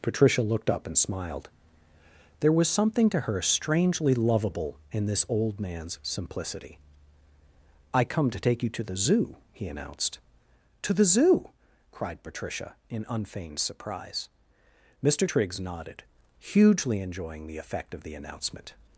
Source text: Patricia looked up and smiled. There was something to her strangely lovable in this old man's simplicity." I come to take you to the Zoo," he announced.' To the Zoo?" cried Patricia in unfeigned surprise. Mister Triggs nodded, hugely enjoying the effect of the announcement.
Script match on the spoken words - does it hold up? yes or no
yes